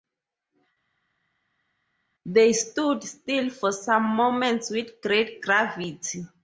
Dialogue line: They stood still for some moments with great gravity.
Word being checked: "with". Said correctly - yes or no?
yes